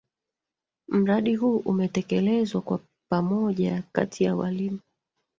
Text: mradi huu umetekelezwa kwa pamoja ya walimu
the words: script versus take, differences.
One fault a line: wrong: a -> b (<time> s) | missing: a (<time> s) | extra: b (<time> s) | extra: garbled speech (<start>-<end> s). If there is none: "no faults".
extra: kati (3.9 s)